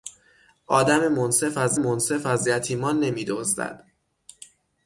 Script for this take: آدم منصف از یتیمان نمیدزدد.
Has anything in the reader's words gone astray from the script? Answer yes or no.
yes